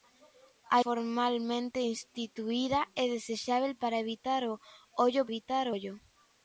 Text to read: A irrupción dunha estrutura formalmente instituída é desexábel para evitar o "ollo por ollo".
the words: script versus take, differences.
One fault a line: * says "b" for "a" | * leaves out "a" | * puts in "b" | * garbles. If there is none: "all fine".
* leaves out "irrupción dunha estrutura"
* says "evitar" for "por"